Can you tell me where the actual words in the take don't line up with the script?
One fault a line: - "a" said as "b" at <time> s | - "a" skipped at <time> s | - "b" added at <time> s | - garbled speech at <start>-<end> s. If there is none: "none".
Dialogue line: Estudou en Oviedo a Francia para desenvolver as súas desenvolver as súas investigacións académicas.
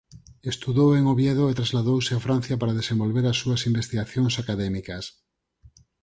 - "e trasladouse" added at 1.5 s
- "desenvolver as súas" skipped at 3.6 s